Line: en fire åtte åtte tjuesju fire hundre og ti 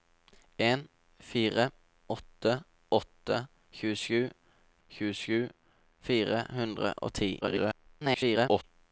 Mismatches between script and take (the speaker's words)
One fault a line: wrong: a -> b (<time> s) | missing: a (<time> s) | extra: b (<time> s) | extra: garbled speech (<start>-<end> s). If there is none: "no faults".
extra: tjuesju (4.9 s)
extra: garbled speech (7.4-8.6 s)